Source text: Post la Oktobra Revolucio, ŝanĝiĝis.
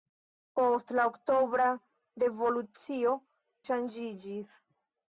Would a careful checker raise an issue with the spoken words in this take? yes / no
no